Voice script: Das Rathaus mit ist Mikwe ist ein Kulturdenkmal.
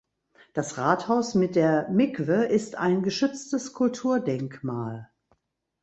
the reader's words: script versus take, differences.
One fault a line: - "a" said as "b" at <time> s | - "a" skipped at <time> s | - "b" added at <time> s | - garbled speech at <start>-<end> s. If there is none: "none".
- "ist" said as "der" at 1.6 s
- "geschütztes" added at 3.0 s